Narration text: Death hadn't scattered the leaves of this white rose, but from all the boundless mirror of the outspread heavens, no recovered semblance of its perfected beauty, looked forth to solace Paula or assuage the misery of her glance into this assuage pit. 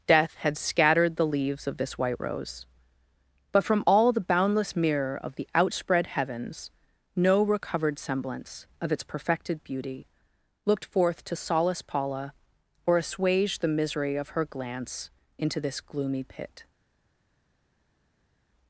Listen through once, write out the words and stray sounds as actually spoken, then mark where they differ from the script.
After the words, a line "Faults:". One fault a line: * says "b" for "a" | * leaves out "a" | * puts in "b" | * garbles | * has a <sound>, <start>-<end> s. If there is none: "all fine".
Death had scattered the leaves of this white rose, but from all the boundless mirror of the outspread heavens, no recovered semblance of its perfected beauty, looked forth to solace Paula or assuage the misery of her glance into this gloomy pit.
Faults:
* says "had" for "hadn't"
* says "gloomy" for "assuage"